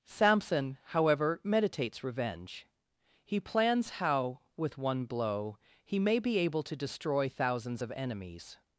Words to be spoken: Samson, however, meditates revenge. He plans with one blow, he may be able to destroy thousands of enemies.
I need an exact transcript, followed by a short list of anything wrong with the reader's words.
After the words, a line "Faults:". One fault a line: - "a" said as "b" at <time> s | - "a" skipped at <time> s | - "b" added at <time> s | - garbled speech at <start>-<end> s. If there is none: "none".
Samson, however, meditates revenge. He plans how, with one blow, he may be able to destroy thousands of enemies.
Faults:
- "how" added at 3.9 s